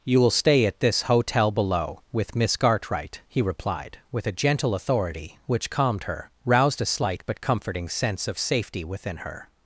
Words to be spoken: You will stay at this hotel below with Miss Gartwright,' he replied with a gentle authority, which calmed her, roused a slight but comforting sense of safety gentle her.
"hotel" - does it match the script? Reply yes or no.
yes